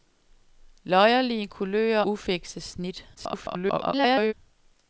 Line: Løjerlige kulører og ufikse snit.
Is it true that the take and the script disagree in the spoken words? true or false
true